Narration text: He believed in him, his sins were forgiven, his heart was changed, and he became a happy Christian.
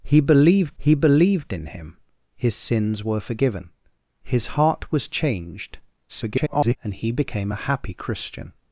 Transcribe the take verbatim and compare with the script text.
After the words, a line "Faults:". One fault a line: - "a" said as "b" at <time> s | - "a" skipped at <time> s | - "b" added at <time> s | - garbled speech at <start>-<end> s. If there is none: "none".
He believed he believed in him, his sins were forgiven, his heart was changed, [garbled] and he became a happy Christian.
Faults:
- "he believed" added at 0.8 s
- garbled speech at 6.1-6.8 s